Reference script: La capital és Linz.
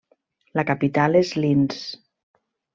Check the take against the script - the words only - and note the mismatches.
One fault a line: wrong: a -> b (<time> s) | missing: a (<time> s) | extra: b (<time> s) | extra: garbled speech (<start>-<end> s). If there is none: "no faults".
no faults